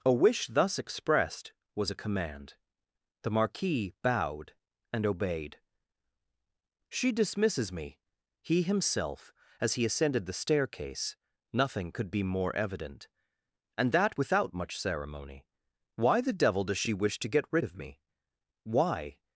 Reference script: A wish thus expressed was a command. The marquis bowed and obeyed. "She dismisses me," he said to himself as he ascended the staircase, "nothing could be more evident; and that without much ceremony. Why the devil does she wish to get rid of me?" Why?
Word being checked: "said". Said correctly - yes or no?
no